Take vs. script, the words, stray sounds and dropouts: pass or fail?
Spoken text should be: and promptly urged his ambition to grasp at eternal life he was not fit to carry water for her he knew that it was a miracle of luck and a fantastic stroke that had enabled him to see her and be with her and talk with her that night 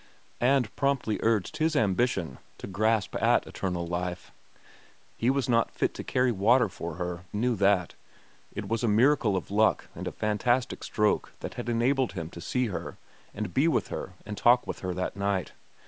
fail